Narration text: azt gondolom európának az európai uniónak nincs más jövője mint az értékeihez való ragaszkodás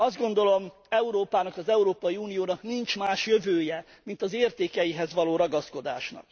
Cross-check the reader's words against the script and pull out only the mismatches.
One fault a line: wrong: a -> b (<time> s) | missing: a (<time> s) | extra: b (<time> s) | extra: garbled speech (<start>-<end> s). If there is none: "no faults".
no faults